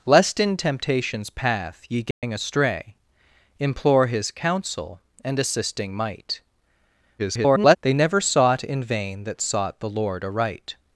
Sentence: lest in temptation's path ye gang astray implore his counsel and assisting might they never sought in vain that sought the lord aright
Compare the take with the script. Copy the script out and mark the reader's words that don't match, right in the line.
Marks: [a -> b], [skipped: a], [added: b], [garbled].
lest in temptation's path ye gang astray implore his counsel and assisting might [garbled] they never sought in vain that sought the lord aright